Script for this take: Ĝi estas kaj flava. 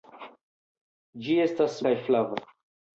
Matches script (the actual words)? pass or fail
pass